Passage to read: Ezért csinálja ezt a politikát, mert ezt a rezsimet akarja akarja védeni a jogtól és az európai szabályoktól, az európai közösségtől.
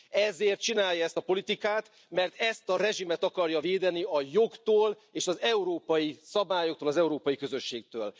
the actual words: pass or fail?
fail